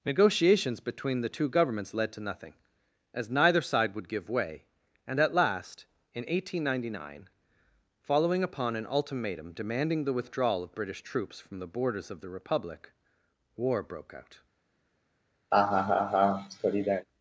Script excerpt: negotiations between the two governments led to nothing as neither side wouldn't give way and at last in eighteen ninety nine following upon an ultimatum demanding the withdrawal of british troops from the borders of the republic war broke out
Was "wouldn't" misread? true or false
true